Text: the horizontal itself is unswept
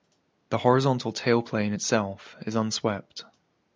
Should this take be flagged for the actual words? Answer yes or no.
yes